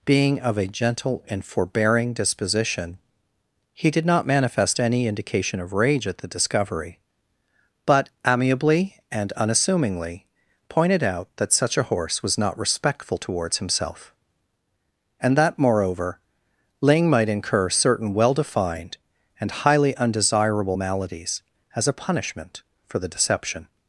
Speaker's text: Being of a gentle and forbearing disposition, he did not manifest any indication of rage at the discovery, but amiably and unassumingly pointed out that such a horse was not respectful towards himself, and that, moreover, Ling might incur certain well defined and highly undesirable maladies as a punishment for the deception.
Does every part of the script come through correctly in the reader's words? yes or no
yes